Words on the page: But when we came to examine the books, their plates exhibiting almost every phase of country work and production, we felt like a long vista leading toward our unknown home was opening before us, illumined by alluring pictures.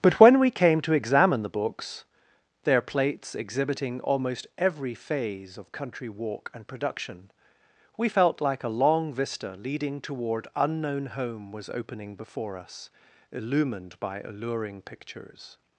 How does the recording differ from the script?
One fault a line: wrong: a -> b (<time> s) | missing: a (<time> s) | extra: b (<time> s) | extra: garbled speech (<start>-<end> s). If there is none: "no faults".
wrong: work -> walk (6.1 s)
missing: our (10.5 s)